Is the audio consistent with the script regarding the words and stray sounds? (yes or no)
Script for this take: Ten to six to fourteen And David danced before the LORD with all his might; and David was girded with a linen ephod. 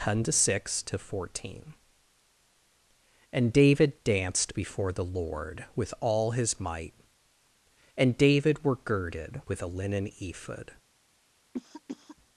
no